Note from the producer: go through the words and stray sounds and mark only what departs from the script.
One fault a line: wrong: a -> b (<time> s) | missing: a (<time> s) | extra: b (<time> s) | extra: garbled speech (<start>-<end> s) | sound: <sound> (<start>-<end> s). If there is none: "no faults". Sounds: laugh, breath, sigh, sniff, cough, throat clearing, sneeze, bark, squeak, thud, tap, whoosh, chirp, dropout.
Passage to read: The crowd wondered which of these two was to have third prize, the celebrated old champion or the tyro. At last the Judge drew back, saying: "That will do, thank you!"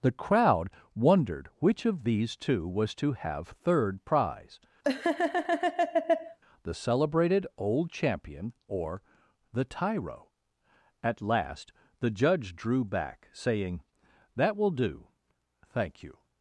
sound: laugh (4.8-6.4 s)